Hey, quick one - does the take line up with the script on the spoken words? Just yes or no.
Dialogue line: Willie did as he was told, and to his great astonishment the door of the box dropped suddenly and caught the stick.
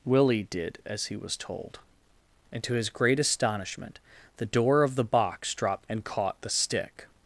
no